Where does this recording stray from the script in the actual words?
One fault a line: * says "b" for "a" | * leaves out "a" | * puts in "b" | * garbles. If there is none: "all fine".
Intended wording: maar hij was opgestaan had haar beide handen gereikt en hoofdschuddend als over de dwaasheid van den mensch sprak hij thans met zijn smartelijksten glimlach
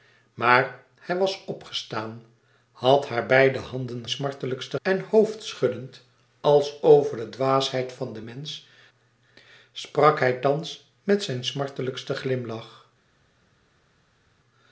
* says "smartelijksten" for "gereikt"